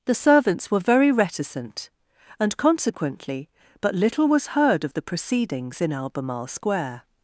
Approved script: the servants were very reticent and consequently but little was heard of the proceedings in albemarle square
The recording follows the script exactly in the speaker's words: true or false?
true